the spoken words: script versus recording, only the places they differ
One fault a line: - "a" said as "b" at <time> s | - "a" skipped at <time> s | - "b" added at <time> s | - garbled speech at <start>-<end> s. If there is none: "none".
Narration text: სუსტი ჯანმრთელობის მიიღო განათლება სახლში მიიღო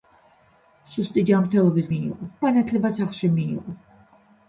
none